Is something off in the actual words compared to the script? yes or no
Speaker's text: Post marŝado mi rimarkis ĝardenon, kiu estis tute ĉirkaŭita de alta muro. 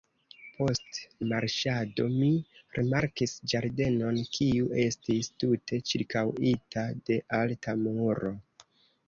no